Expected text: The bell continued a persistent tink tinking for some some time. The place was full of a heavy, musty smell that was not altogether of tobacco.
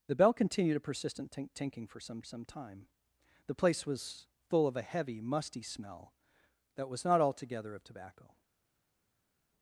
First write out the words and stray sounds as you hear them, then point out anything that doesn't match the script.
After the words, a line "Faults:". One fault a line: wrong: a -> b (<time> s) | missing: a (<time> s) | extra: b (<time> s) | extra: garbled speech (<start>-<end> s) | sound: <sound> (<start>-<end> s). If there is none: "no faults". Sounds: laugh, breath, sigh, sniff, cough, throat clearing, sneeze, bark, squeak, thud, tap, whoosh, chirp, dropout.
The bell continued a persistent tink tinking for some some time. The place was full of a heavy, musty smell that was not altogether of tobacco.
Faults:
no faults